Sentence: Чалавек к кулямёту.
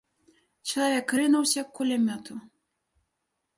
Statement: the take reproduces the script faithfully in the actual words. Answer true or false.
false